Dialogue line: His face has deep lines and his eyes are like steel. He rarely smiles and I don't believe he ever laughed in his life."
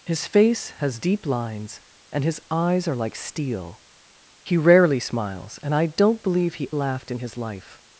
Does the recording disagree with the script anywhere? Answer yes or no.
yes